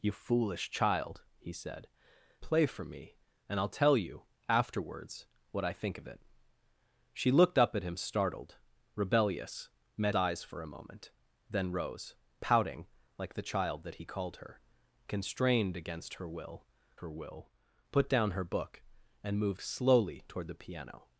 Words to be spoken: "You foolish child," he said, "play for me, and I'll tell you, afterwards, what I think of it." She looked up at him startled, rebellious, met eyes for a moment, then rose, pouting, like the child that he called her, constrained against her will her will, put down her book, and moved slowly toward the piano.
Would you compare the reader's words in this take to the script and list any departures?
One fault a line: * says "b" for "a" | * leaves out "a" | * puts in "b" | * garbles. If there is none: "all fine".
all fine